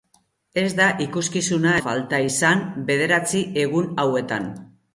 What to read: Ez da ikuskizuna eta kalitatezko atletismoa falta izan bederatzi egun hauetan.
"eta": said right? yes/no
no